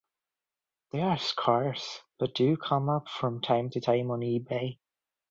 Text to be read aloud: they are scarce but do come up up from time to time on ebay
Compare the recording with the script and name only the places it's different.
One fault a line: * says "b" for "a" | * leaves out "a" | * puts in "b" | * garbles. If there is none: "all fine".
* leaves out "up"